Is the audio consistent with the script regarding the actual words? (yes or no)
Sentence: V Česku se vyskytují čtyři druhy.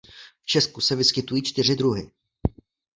yes